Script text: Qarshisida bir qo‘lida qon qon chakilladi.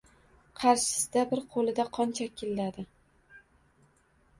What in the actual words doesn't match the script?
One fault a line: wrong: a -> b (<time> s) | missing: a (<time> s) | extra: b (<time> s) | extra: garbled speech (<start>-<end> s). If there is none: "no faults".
missing: qon (2.2 s)